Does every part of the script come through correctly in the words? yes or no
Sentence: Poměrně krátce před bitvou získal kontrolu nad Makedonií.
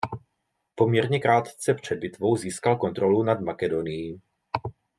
yes